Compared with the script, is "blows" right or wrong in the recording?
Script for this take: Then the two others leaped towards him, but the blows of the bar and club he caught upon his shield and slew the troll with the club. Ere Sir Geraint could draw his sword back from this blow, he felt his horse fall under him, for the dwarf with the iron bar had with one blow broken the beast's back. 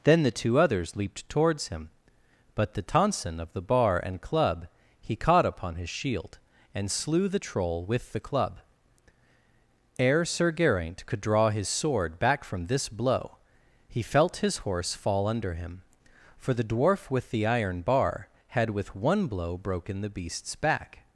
wrong